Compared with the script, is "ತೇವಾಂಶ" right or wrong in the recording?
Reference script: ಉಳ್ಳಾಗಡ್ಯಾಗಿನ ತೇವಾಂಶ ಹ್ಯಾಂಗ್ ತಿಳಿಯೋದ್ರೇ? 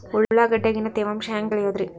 right